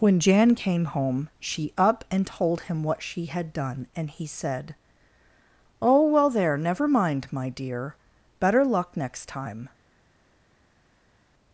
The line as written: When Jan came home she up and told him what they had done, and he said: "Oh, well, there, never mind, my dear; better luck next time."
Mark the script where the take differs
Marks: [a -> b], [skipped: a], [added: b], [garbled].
When Jan came home she up and told him what [they -> she] had done, and he said: "Oh, well, there, never mind, my dear; better luck next time."